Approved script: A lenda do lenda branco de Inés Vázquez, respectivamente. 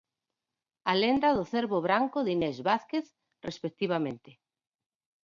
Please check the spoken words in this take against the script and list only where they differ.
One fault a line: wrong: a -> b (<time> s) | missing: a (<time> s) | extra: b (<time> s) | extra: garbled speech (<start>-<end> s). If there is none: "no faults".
wrong: lenda -> cervo (1.5 s)